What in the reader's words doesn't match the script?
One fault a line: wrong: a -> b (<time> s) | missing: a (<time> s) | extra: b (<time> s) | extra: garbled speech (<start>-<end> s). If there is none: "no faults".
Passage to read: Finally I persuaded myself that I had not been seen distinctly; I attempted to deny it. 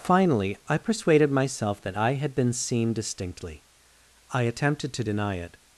missing: not (2.3 s)